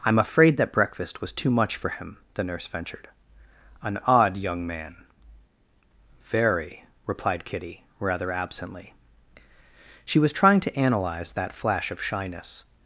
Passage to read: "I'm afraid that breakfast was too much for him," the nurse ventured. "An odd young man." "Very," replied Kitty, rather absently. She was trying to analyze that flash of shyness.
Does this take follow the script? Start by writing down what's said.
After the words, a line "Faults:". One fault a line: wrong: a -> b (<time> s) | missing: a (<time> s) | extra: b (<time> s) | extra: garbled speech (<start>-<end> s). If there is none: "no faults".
"I'm afraid that breakfast was too much for him," the nurse ventured. "An odd young man." "Very," replied Kitty, rather absently. She was trying to analyze that flash of shyness.
Faults:
no faults